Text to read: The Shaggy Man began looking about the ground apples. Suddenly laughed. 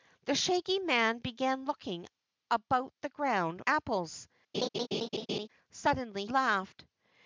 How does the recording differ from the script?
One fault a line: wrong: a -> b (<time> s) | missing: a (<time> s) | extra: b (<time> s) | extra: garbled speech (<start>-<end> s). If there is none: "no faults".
no faults